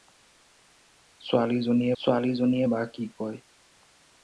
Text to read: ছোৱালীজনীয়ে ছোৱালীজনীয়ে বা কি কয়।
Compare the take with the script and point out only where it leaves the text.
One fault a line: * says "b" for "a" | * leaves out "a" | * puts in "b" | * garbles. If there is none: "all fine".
all fine